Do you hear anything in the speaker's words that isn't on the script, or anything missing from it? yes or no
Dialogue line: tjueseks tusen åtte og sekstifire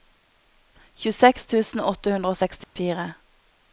yes